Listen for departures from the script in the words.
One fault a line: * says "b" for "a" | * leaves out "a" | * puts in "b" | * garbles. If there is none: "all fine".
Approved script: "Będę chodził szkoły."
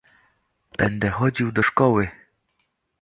* puts in "do"